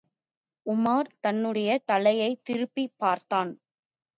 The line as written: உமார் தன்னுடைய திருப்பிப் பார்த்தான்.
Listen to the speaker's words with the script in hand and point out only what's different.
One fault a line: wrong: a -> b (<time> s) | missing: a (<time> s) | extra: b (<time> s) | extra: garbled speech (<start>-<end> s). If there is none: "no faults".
extra: தலையைத் (1.9 s)